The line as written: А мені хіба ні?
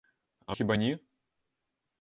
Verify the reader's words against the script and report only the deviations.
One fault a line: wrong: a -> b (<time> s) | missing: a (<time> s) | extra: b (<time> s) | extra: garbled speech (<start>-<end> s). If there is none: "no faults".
missing: мені (0.6 s)